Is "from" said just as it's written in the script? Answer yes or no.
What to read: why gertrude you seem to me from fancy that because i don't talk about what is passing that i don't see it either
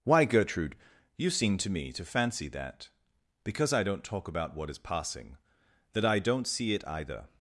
no